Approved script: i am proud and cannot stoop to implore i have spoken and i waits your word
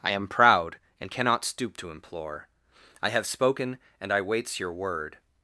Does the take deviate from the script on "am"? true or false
false